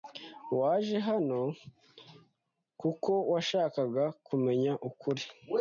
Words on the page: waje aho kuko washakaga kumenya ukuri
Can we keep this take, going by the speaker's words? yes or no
no